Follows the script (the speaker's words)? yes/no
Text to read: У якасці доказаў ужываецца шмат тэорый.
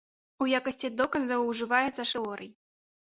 no